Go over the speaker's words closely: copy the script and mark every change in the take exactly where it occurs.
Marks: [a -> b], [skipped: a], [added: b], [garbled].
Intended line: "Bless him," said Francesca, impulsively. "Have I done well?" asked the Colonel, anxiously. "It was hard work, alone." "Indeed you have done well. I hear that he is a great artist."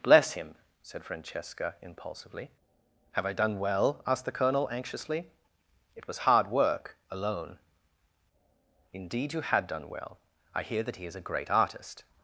"Bless him," said Francesca, impulsively. "Have I done well?" asked the Colonel, anxiously. "It was hard work, alone." "Indeed you [have -> had] done well. I hear that he is a great artist."